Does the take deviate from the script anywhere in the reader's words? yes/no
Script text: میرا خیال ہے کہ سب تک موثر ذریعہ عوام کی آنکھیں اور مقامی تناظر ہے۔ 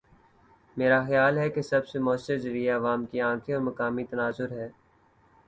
yes